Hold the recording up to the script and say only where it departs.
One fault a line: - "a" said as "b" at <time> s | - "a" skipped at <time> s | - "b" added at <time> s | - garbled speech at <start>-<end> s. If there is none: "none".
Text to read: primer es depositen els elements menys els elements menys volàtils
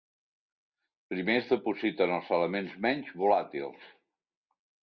- "els elements menys" skipped at 3.1 s